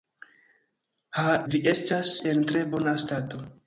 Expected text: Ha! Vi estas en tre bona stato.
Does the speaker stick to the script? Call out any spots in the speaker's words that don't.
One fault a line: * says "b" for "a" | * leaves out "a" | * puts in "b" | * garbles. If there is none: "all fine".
all fine